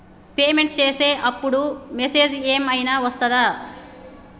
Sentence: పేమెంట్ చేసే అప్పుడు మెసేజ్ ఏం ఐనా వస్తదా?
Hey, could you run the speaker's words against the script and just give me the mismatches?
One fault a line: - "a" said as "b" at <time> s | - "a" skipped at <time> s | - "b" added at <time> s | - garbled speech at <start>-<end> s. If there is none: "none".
none